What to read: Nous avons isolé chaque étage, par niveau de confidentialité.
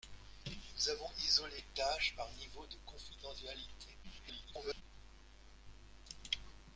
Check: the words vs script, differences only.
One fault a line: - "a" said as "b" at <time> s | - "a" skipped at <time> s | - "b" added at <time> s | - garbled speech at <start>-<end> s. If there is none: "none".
- "chaque" skipped at 1.6 s
- garbled speech at 4.0-4.8 s